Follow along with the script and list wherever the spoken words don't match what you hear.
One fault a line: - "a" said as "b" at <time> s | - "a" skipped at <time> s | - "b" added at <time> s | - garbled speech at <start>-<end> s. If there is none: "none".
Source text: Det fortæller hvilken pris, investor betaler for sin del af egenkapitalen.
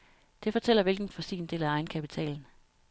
- "pris investor betaler" skipped at 1.1 s